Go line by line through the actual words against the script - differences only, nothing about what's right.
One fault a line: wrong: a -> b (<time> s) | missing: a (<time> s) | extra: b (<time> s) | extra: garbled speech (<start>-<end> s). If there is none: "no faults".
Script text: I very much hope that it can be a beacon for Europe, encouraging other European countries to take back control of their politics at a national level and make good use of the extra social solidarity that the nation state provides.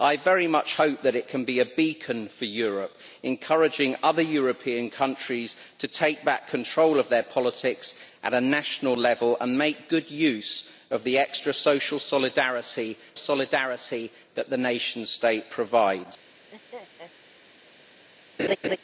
extra: solidarity (13.2 s)